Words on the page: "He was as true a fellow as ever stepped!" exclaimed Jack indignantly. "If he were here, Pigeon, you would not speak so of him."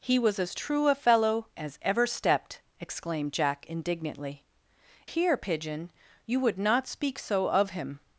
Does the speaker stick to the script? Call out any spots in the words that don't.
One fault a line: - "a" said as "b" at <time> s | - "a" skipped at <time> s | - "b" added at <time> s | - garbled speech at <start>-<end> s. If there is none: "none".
- "If he were" skipped at 4.4 s